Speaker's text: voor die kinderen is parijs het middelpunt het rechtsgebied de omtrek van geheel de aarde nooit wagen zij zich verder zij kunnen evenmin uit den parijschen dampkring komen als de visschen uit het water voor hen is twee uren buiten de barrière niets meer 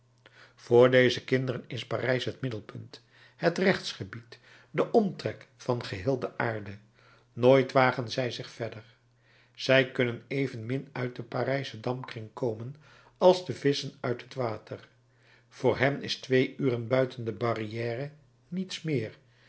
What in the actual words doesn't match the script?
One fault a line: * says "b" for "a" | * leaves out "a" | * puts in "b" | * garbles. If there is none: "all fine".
* says "deze" for "die"